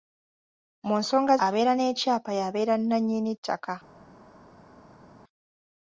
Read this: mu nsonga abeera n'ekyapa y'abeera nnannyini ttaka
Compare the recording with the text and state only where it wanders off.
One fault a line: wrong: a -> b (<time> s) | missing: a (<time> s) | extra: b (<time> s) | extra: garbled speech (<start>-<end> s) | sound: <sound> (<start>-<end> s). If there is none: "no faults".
no faults